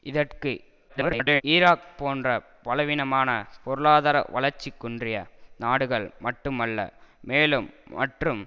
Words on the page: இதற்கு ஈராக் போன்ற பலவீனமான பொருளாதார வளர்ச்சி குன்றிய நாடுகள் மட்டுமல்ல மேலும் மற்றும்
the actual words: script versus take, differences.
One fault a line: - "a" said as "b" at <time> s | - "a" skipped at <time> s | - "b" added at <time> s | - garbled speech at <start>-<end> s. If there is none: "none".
- garbled speech at 0.9-1.4 s